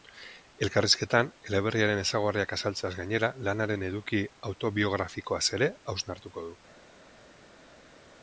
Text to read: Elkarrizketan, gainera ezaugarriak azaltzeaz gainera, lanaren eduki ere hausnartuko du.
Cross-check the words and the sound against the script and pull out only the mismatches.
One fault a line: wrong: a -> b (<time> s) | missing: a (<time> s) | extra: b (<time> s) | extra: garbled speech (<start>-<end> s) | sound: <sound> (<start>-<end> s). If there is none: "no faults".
wrong: gainera -> eleberriaren (1.5 s)
extra: autobiografikoaz (4.5 s)